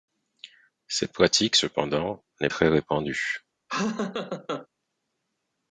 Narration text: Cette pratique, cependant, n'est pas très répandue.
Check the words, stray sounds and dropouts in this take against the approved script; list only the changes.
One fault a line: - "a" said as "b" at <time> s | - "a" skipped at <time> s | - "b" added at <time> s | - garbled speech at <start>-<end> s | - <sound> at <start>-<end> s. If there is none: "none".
- "pas" skipped at 2.5 s
- laugh at 3.7-4.7 s